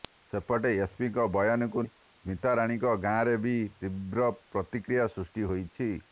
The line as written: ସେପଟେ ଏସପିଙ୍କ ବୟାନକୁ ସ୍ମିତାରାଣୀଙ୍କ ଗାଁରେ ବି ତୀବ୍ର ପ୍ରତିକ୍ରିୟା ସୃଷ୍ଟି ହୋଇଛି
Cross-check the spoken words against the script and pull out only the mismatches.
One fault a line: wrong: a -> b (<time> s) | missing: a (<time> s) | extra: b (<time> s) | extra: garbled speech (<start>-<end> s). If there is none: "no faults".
no faults